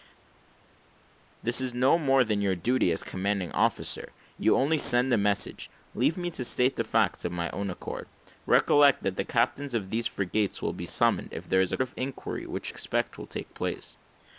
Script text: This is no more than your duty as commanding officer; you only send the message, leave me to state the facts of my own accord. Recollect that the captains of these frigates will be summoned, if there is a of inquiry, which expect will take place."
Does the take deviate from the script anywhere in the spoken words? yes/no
no